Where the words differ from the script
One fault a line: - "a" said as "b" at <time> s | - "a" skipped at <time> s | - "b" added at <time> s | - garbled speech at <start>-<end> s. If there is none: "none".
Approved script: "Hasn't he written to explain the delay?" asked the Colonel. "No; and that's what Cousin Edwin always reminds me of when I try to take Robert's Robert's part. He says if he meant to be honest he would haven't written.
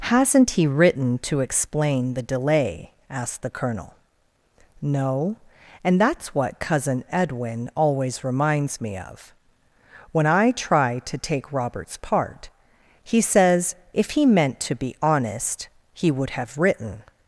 - "Robert's" skipped at 12.0 s
- "haven't" said as "have" at 16.3 s